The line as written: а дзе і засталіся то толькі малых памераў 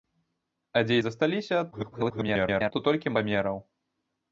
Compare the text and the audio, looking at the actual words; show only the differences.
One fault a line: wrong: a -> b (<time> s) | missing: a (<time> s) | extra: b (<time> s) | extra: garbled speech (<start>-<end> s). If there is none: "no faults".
extra: garbled speech (1.7-2.7 s)
missing: малых (3.2 s)